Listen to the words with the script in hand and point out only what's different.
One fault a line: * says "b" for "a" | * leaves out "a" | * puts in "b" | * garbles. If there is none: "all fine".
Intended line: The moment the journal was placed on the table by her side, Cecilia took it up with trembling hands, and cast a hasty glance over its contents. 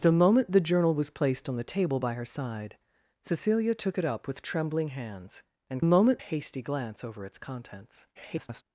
* says "moment" for "cast"
* garbles